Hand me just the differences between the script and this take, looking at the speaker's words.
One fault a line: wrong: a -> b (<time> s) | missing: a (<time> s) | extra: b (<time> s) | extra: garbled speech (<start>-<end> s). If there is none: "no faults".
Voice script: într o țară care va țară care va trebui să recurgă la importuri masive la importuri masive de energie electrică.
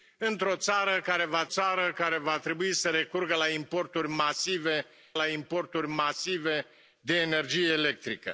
no faults